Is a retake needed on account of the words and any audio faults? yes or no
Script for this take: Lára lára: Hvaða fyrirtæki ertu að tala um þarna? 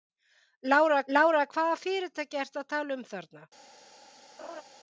yes